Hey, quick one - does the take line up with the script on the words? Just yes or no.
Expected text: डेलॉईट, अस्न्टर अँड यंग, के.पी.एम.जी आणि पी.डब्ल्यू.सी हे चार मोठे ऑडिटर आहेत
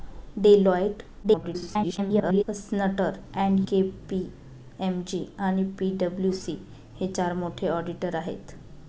no